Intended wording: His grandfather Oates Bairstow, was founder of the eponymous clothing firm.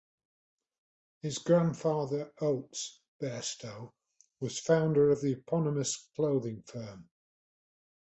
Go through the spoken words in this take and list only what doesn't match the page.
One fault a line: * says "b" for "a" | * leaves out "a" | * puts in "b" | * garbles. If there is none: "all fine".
all fine